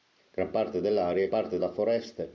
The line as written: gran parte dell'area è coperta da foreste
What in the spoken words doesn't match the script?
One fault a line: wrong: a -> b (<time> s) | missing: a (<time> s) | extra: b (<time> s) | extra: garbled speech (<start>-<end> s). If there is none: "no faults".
wrong: coperta -> parte (1.3 s)